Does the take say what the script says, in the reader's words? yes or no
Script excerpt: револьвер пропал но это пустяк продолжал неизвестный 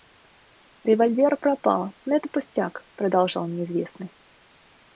yes